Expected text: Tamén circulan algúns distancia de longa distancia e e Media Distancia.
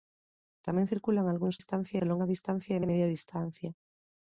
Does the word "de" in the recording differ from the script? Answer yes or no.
no